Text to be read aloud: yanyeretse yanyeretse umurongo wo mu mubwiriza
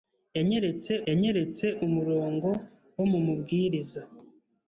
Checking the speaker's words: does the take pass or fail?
pass